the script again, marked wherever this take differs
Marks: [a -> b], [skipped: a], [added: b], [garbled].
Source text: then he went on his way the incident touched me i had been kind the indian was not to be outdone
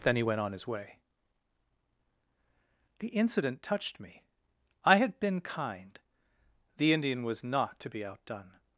then he went on his way the incident touched me i had been kind the indian was not to be outdone